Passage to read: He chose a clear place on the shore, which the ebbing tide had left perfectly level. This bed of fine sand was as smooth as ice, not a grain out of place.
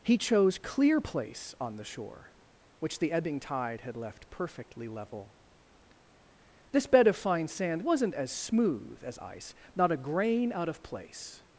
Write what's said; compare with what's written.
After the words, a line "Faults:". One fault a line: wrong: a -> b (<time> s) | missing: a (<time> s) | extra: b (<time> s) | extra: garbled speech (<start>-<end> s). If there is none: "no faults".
He chose clear place on the shore, which the ebbing tide had left perfectly level. This bed of fine sand wasn't as smooth as ice, not a grain out of place.
Faults:
missing: a (0.6 s)
wrong: was -> wasn't (7.8 s)